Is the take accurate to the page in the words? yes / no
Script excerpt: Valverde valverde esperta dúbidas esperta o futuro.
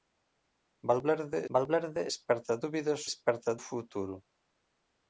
yes